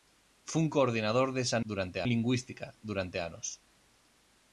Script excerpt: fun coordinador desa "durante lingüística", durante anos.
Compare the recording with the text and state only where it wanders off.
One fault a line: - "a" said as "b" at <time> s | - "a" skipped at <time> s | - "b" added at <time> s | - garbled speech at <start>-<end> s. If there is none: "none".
none